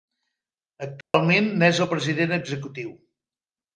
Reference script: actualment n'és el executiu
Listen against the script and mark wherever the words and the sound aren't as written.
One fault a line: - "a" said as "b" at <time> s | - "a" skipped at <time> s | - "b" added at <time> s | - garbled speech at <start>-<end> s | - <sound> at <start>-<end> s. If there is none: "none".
- dropout at 1.0-1.1 s
- "president" added at 2.0 s